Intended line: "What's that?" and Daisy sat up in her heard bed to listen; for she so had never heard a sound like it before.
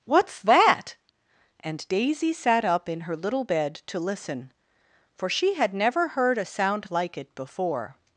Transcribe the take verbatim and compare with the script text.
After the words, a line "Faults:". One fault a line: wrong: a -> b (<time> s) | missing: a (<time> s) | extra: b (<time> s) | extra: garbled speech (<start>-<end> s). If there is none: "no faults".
"What's that?" and Daisy sat up in her little bed to listen; for she had never heard a sound like it before.
Faults:
wrong: heard -> little (3.2 s)
missing: so (5.6 s)